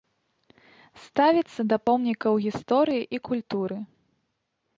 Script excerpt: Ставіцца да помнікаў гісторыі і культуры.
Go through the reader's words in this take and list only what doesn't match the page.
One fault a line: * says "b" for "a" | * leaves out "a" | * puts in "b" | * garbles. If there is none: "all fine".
all fine